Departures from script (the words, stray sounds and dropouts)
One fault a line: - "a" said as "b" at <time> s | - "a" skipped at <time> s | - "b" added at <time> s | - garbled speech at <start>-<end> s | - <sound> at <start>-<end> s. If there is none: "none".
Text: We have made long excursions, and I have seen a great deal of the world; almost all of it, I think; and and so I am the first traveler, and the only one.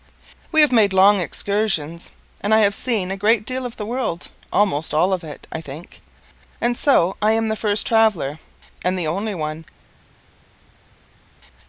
- "and" skipped at 6.8 s